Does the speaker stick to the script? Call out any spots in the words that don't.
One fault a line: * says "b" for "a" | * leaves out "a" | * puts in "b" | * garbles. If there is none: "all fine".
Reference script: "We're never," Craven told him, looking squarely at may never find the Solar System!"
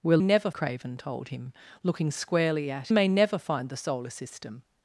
all fine